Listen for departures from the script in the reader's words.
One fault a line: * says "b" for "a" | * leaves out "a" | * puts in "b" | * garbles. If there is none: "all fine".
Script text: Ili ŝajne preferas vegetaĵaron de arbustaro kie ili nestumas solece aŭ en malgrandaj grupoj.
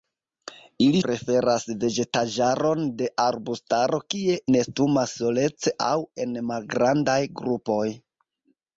* leaves out "ŝajne"
* leaves out "ili"